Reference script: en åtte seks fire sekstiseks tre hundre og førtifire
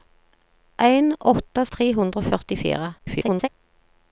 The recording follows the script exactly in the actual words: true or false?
false